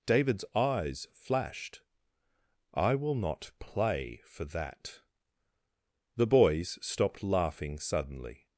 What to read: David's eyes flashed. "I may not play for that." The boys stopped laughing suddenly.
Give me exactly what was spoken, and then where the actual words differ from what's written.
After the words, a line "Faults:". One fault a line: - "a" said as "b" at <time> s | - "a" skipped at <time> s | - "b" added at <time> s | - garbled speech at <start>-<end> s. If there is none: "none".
David's eyes flashed. "I will not play for that." The boys stopped laughing suddenly.
Faults:
- "may" said as "will" at 3.0 s